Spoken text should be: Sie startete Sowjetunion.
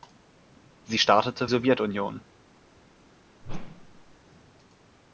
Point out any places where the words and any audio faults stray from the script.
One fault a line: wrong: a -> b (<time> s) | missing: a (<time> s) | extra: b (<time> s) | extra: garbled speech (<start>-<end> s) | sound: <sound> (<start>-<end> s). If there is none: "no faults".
sound: whoosh (3.4-4.2 s)